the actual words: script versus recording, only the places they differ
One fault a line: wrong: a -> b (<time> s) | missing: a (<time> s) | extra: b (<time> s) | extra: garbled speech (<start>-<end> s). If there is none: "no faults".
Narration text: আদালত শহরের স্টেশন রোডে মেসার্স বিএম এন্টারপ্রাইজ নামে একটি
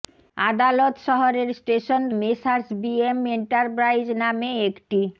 missing: রোডে (2.0 s)